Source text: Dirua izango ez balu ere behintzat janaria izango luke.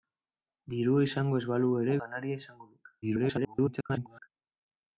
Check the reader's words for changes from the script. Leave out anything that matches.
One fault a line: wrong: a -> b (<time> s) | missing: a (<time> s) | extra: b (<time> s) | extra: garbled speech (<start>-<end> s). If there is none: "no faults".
missing: behintzat (2.0 s)
extra: garbled speech (3.0-4.3 s)